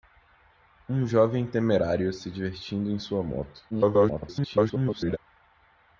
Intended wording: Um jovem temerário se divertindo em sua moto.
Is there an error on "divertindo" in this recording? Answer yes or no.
no